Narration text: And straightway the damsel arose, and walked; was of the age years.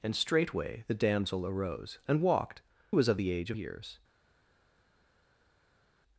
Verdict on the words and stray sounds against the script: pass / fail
pass